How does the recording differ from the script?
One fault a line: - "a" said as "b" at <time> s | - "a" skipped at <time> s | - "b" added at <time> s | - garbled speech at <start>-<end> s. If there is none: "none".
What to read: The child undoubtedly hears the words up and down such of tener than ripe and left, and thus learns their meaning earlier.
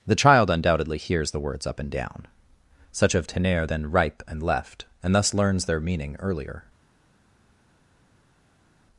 none